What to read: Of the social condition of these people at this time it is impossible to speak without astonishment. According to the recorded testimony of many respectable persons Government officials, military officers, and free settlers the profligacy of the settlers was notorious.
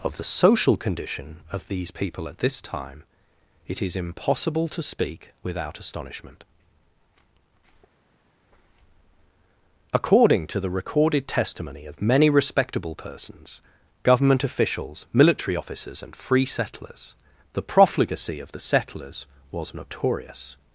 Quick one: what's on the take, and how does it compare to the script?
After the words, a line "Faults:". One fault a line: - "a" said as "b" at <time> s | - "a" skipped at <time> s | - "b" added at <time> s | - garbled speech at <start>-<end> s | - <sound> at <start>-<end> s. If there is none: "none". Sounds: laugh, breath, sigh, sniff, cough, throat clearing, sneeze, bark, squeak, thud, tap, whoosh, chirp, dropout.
Of the social condition of these people at this time it is impossible to speak without astonishment. According to the recorded testimony of many respectable persons Government officials, military officers, and free settlers the profligacy of the settlers was notorious.
Faults:
none